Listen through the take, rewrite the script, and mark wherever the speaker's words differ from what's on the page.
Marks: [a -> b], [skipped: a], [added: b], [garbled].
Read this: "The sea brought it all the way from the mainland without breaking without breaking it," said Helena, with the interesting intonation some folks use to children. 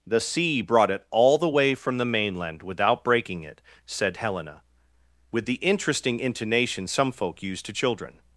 "The sea brought it all the way from the mainland without breaking [skipped: without breaking] it," said Helena, with the interesting intonation some [folks -> folk] use to children.